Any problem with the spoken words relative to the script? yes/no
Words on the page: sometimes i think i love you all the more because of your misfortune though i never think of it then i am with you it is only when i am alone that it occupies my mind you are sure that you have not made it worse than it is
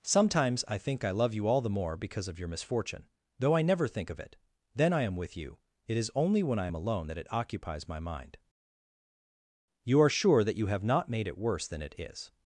no